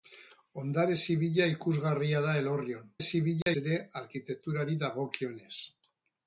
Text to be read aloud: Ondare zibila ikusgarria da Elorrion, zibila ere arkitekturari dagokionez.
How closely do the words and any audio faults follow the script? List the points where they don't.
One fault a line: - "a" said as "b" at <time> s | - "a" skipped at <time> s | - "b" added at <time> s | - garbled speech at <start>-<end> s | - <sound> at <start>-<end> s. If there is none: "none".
- dropout at 3.4-3.5 s